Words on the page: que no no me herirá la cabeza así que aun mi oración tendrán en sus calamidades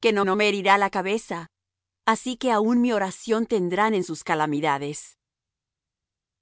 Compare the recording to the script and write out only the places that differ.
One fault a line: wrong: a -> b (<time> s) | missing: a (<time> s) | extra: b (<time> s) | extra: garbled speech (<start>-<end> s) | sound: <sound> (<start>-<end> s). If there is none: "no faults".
no faults